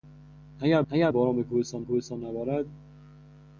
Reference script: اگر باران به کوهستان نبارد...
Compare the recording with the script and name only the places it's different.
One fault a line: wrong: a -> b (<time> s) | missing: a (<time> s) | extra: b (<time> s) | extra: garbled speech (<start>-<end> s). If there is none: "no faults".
extra: اگر (0.9 s)
extra: کوهستان (1.8 s)